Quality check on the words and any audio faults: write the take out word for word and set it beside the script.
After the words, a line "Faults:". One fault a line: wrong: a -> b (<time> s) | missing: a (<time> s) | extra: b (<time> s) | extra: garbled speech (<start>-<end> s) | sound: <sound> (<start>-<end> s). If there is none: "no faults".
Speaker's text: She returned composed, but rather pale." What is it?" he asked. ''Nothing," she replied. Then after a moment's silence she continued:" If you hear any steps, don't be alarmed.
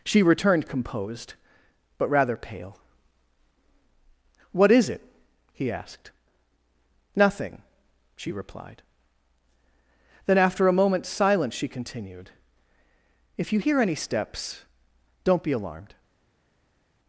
She returned composed, but rather pale." What is it?" he asked. ''Nothing," she replied. Then after a moment's silence she continued:" If you hear any steps, don't be alarmed.
Faults:
no faults